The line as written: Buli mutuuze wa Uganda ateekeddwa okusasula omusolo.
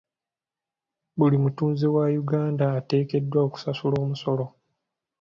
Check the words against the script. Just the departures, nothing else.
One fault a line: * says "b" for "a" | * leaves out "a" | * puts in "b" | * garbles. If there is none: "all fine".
all fine